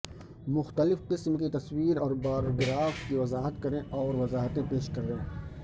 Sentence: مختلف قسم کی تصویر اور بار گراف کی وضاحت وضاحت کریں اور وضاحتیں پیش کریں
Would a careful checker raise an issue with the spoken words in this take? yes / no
yes